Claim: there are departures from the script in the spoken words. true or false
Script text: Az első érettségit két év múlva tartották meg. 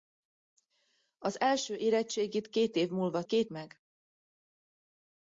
true